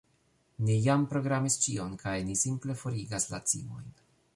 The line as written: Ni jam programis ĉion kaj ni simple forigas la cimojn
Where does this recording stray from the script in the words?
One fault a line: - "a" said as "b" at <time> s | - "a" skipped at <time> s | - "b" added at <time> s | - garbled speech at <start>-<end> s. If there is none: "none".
none